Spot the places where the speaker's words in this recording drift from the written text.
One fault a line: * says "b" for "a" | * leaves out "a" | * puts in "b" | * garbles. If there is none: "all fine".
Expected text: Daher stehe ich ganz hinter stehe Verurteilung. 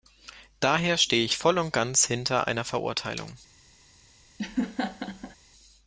* puts in "voll und"
* says "einer" for "stehe"